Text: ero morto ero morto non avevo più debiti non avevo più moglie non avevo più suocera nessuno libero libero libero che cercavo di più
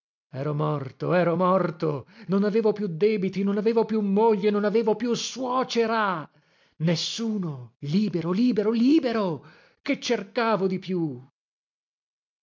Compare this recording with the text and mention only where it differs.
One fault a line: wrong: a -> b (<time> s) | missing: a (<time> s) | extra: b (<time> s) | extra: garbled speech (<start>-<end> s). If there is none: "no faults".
no faults